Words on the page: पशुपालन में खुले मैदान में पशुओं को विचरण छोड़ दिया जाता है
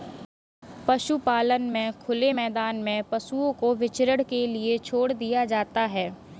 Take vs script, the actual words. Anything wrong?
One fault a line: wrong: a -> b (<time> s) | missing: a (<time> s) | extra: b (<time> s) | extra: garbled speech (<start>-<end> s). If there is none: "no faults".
extra: के लिए (4.2 s)